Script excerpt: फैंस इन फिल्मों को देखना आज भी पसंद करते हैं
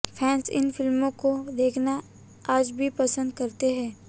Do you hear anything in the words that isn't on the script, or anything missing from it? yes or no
no